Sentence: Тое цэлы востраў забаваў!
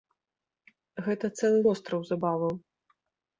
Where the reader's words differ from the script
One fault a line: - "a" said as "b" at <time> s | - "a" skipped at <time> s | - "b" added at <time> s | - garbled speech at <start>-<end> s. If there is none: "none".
- "Тое" said as "Гэта" at 1.1 s